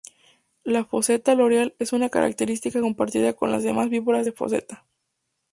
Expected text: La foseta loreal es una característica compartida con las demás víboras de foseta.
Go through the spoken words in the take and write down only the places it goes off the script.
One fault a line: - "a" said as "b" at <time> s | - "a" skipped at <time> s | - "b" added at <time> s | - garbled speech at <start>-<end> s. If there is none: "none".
none